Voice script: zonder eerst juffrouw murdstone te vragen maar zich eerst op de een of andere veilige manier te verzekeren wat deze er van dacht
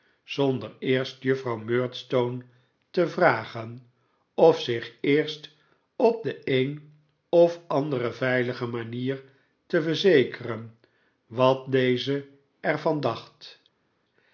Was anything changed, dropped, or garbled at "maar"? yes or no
yes